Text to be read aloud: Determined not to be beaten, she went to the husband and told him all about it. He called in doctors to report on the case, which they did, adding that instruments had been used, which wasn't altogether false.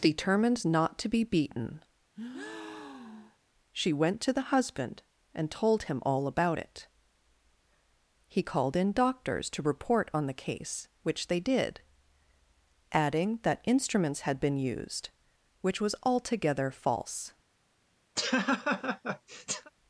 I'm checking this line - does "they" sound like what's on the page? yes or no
yes